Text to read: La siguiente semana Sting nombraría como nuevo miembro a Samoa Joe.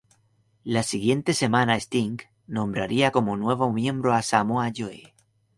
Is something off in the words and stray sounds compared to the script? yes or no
no